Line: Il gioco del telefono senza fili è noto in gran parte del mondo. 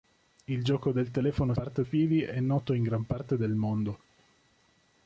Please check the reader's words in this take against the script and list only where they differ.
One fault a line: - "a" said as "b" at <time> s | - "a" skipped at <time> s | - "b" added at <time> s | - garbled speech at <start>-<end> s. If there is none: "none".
- "senza" said as "parte" at 1.5 s